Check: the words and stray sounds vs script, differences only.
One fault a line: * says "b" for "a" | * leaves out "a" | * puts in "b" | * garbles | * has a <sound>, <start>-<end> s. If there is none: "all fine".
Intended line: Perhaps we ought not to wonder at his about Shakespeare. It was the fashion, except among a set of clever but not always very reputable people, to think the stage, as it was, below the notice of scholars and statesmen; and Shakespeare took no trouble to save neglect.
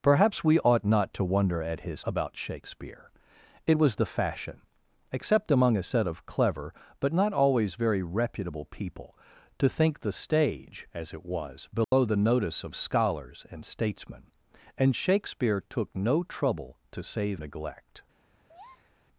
* has a dropout, 11.8-11.9 s
* has a breath, 18.5-19.0 s